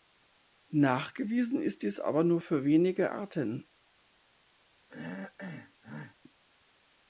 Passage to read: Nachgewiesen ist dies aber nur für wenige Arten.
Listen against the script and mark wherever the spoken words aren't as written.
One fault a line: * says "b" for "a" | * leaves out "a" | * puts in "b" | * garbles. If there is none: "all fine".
all fine